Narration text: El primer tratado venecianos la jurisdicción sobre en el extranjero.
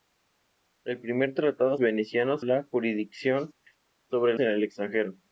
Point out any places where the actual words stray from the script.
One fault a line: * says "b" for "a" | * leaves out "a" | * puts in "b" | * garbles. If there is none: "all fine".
all fine